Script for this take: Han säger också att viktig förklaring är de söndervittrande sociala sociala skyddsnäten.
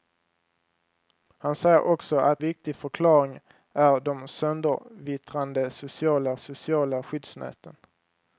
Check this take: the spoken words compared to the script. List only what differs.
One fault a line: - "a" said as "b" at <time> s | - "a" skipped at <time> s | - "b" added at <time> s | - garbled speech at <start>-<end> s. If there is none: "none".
none